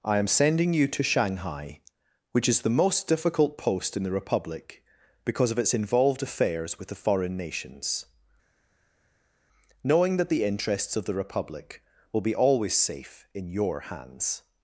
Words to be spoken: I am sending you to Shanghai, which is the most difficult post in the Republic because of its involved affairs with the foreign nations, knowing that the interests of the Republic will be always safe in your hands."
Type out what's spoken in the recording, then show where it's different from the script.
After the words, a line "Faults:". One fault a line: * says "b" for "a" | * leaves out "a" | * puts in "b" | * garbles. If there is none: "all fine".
I am sending you to Shanghai, which is the most difficult post in the Republic because of its involved affairs with the foreign nations, knowing that the interests of the Republic will be always safe in your hands."
Faults:
all fine